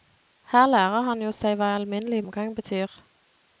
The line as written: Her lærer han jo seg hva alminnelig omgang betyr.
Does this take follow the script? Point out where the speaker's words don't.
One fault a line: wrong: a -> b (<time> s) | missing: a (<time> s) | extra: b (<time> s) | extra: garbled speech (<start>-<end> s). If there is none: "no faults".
no faults